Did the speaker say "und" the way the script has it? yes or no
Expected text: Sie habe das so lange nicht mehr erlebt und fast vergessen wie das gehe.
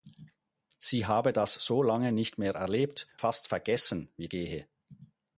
no